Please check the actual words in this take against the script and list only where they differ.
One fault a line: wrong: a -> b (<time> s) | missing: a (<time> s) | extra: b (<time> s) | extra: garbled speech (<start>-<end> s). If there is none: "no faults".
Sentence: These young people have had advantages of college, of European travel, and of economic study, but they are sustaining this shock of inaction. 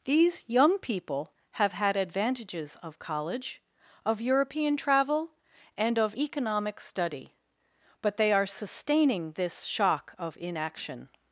no faults